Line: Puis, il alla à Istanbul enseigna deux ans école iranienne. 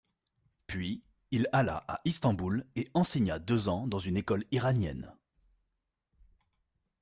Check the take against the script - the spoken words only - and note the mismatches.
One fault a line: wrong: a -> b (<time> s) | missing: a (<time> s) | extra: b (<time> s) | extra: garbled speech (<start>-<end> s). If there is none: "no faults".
extra: et (2.8 s)
extra: dans une (3.9 s)